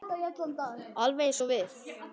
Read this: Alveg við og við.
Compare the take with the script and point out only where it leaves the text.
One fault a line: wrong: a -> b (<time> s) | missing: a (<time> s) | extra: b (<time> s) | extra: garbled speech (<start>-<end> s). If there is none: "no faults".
wrong: við -> eins (1.3 s)